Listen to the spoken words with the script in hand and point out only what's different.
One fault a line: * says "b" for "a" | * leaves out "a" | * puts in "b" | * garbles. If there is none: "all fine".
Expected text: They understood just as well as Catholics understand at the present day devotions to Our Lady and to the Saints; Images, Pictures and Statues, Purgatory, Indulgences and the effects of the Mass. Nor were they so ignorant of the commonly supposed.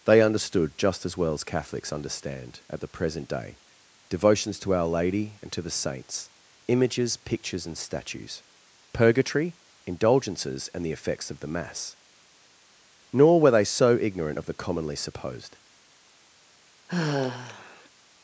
all fine